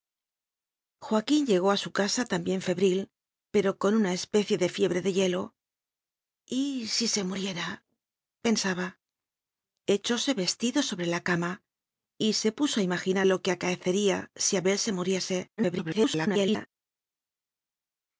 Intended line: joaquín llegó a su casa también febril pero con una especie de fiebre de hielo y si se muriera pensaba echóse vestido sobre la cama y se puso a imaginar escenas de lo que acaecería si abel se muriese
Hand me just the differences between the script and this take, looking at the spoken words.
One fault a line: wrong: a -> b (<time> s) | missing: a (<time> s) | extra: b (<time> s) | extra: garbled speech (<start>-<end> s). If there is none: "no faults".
missing: escenas de (13.3 s)
extra: garbled speech (15.6-16.7 s)